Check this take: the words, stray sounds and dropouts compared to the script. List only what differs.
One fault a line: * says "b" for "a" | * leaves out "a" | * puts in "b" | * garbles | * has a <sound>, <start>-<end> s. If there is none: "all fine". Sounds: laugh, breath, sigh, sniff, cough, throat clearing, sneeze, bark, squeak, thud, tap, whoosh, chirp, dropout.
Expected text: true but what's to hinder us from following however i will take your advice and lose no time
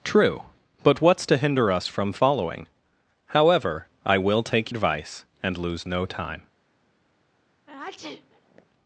* leaves out "your"
* has a sneeze, 7.7-8.7 s